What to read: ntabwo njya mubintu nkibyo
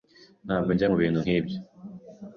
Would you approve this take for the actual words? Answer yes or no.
yes